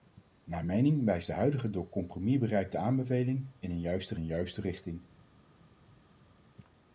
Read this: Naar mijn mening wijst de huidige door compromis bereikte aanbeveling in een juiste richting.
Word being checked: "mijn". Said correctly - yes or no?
no